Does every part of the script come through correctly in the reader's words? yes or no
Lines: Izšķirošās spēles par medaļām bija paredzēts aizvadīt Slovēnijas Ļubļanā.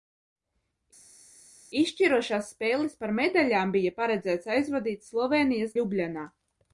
yes